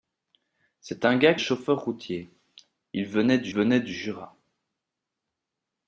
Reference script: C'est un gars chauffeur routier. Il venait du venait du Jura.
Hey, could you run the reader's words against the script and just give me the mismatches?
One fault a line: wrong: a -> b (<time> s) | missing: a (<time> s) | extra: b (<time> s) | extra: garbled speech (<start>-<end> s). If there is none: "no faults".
no faults